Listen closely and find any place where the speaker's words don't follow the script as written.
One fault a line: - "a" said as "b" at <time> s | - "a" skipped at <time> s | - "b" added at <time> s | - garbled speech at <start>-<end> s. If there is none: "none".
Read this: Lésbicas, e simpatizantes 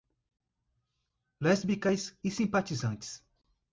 none